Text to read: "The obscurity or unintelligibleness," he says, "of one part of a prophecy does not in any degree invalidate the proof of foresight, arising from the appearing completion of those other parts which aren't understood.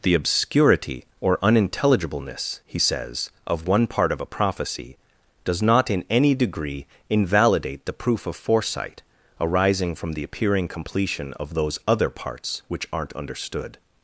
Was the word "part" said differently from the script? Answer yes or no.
no